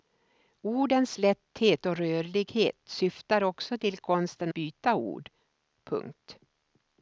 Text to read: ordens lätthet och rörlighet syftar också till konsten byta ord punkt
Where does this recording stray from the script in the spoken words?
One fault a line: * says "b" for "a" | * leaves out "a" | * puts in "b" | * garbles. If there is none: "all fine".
all fine